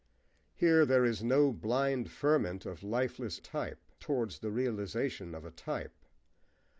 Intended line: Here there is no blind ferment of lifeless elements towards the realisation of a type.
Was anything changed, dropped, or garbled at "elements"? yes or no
yes